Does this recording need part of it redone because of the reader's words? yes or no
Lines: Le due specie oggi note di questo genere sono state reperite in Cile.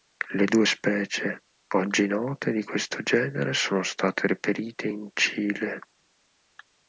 no